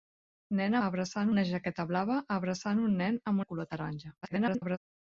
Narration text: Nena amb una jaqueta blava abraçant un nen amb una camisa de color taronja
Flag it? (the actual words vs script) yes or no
yes